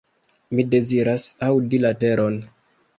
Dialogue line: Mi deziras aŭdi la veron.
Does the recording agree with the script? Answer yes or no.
yes